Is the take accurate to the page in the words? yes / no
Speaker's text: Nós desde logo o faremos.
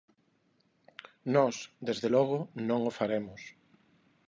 no